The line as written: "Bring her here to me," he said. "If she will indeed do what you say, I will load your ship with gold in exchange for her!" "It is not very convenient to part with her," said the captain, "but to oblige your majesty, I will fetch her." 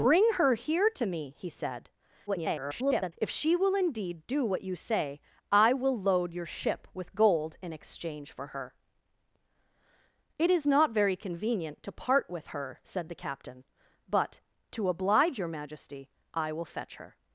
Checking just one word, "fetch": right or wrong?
right